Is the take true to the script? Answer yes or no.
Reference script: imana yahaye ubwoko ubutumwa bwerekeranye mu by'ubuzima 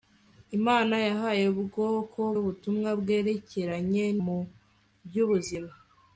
yes